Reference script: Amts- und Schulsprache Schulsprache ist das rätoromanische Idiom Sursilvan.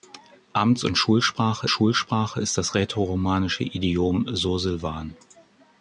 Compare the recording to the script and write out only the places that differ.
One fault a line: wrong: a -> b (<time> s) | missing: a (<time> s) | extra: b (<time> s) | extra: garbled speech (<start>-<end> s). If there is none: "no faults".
no faults